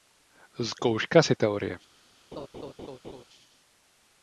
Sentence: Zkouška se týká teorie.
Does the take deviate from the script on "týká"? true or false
true